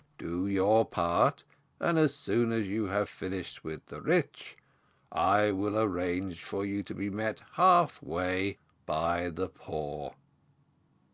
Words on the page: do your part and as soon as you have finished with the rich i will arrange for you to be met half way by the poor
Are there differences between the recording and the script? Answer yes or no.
no